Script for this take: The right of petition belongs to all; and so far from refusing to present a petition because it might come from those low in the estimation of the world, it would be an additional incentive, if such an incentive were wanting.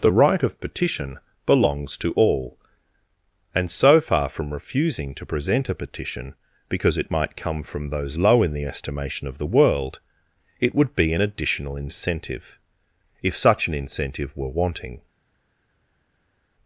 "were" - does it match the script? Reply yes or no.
yes